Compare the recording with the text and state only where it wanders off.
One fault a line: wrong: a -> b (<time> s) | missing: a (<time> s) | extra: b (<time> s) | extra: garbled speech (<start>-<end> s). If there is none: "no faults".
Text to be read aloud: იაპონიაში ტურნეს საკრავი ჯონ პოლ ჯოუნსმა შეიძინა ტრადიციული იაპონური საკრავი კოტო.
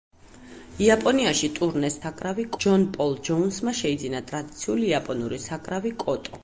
no faults